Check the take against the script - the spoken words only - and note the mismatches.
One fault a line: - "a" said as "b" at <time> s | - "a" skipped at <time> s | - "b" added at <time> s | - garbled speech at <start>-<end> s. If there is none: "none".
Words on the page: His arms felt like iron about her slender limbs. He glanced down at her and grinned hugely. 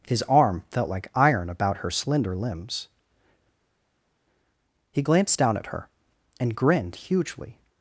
- "arms" said as "arm" at 0.2 s